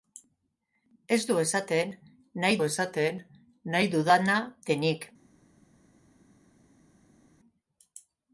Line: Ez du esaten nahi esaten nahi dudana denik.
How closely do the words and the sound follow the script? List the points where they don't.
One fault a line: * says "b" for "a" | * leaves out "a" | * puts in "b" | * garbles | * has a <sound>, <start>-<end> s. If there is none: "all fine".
all fine